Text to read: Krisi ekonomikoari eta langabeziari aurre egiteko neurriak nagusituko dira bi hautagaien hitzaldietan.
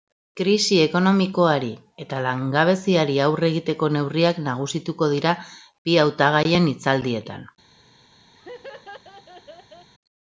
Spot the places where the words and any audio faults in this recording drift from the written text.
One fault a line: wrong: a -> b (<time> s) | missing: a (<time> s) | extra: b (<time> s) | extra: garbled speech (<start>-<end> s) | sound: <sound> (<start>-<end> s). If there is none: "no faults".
sound: laugh (8.3-9.9 s)